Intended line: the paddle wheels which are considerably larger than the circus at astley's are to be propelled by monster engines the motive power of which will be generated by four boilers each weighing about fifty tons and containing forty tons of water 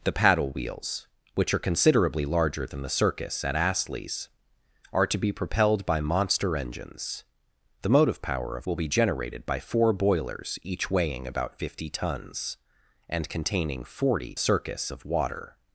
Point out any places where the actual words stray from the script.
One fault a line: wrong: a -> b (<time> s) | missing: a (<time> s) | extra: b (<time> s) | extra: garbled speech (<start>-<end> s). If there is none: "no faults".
missing: which (8.7 s)
wrong: tons -> circus (14.4 s)